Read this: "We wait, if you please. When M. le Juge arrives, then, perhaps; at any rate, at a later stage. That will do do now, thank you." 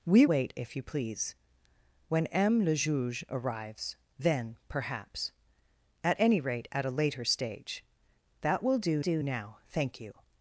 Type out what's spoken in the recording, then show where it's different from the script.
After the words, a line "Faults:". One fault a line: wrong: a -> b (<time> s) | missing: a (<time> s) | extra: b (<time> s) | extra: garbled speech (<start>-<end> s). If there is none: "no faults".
"We wait, if you please. When M. le Juge arrives, then, perhaps; at any rate, at a later stage. That will do do now, thank you."
Faults:
no faults